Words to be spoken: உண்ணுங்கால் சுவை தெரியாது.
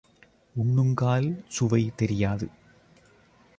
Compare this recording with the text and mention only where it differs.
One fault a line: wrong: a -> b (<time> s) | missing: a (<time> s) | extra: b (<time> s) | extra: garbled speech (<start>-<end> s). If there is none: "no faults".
no faults